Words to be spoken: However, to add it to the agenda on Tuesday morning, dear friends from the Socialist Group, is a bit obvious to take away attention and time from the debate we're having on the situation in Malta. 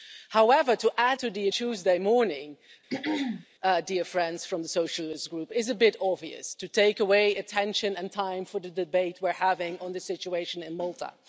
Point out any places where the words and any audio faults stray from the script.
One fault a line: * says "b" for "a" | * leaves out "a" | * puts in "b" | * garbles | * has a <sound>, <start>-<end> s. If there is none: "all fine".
* leaves out "it"
* leaves out "agenda on"
* has a throat clearing, 2.9-3.5 s